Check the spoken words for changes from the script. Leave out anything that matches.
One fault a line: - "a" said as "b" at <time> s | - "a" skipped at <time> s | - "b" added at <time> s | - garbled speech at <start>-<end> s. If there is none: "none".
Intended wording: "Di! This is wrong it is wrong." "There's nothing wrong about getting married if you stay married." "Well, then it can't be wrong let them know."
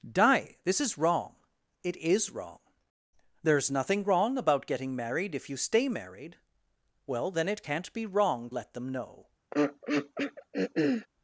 none